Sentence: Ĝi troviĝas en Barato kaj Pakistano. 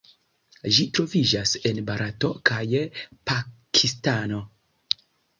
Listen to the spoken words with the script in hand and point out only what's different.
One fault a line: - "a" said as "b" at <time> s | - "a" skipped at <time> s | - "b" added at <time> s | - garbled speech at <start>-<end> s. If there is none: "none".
none